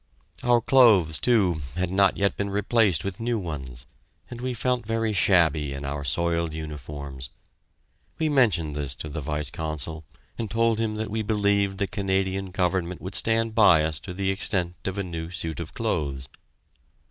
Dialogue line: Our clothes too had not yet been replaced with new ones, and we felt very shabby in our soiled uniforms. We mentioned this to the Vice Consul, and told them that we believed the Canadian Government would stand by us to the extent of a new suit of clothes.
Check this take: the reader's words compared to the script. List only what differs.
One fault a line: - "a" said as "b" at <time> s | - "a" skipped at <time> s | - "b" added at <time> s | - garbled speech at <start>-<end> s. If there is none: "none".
- "them" said as "him" at 10.8 s